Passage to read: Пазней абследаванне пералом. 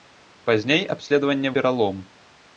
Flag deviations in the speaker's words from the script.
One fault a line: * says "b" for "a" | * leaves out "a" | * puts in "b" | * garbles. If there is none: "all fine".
all fine